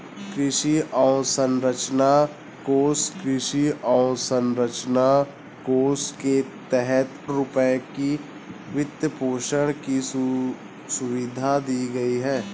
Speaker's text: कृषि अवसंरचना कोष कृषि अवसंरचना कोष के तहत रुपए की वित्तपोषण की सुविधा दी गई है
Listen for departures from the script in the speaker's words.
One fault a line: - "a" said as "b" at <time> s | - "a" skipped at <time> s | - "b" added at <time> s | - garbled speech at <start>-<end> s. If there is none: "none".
none